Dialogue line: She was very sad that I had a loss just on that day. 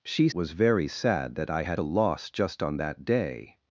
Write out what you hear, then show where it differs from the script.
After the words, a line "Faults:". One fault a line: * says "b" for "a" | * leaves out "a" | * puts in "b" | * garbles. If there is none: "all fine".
She was very sad that I had a loss just on that day.
Faults:
all fine